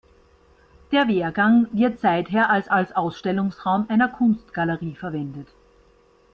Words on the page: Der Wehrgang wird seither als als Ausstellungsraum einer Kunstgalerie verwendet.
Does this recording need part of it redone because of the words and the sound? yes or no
no